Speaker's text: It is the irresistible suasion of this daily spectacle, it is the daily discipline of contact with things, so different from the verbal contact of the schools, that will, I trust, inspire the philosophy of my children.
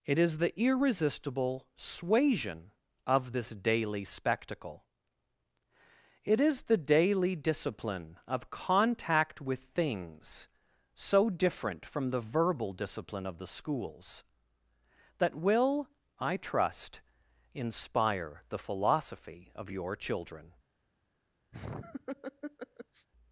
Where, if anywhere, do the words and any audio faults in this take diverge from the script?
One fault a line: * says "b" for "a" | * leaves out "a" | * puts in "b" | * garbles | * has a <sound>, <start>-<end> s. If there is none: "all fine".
* says "discipline" for "contact"
* says "your" for "my"
* has a laugh, 21.5-23.1 s